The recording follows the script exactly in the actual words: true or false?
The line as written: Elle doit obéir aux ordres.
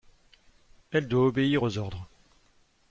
true